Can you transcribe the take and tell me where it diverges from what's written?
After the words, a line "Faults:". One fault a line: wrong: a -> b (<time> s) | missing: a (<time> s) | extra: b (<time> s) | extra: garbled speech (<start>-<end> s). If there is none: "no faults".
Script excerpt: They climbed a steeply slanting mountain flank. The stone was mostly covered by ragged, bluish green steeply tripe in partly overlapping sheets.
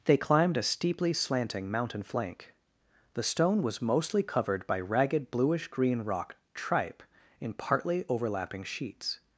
They climbed a steeply slanting mountain flank. The stone was mostly covered by ragged, bluish green rock tripe in partly overlapping sheets.
Faults:
wrong: steeply -> rock (6.0 s)